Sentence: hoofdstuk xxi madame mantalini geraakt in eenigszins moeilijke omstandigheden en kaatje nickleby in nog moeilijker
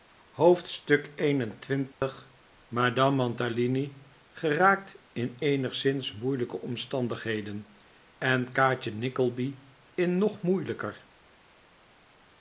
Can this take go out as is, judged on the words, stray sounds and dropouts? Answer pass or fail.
fail